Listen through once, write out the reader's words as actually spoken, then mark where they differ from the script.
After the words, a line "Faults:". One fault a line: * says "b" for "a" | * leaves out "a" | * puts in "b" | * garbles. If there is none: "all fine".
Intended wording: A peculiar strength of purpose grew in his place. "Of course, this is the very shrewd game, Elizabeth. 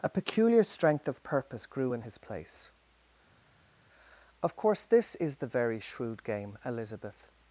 A peculiar strength of purpose grew in his place. "Of course, this is the very shrewd game, Elizabeth.
Faults:
all fine